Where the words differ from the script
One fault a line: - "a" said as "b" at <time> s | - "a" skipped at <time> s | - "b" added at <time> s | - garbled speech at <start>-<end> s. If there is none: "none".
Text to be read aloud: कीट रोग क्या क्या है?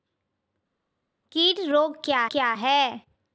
none